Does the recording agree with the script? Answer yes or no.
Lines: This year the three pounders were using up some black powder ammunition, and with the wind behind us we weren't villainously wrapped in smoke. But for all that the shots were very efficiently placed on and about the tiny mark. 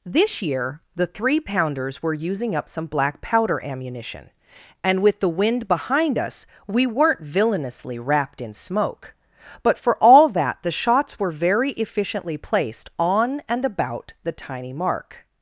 yes